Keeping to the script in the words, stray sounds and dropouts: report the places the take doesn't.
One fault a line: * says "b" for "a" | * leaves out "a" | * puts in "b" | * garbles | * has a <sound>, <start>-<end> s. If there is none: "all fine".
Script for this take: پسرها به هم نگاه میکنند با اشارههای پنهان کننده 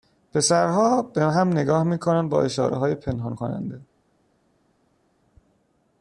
all fine